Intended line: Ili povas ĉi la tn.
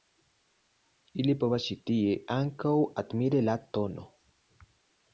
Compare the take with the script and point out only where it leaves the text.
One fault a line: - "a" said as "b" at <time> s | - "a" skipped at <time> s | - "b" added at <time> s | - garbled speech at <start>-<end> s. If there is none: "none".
- "tie ankaŭ admiri" added at 1.9 s